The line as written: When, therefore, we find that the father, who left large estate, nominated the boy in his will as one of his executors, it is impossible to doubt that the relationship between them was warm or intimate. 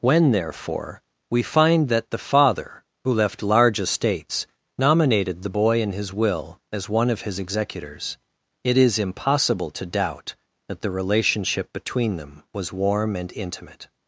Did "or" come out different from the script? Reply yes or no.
yes